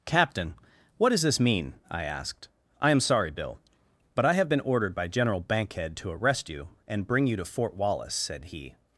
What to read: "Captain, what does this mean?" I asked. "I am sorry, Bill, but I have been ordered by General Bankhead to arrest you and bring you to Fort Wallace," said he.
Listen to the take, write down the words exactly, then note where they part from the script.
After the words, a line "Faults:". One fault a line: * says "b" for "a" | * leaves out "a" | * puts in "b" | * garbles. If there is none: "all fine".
"Captain, what does this mean?" I asked. "I am sorry, Bill, but I have been ordered by General Bankhead to arrest you and bring you to Fort Wallace," said he.
Faults:
all fine